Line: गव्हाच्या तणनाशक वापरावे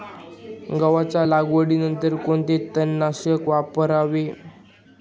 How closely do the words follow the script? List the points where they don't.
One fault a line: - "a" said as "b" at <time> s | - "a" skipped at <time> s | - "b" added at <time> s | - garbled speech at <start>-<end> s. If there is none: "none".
- "लागवडीनंतर कोणते" added at 1.2 s